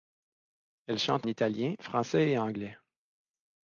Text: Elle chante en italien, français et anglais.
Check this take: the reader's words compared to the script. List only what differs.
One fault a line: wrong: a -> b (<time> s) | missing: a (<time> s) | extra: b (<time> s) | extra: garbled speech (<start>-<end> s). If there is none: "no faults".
missing: en (1.3 s)